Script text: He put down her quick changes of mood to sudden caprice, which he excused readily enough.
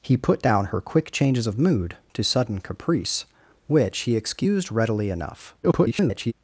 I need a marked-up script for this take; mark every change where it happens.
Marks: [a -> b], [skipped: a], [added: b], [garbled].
He put down her quick changes of mood to sudden caprice, which he excused readily enough. [garbled]